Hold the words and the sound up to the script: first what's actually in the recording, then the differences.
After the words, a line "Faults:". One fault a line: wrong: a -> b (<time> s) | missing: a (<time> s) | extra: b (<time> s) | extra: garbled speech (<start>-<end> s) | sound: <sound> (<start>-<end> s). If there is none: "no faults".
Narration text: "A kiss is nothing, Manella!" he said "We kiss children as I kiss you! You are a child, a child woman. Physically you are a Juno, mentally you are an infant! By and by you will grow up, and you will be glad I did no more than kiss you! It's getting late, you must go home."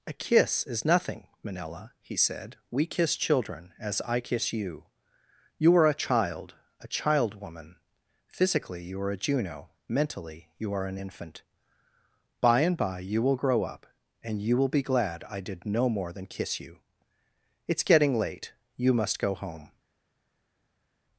"A kiss is nothing, Manella!" he said "We kiss children as I kiss you! You are a child, a child woman. Physically you are a Juno, mentally you are an infant! By and by you will grow up, and you will be glad I did no more than kiss you! It's getting late, you must go home."
Faults:
no faults